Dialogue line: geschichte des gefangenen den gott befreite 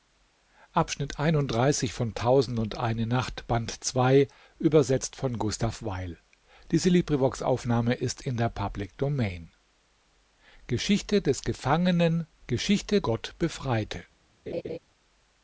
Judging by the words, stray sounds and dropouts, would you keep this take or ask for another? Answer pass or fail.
fail